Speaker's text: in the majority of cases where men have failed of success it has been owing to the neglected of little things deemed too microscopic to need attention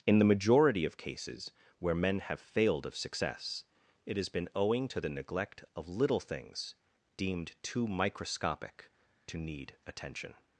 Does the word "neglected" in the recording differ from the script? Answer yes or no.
yes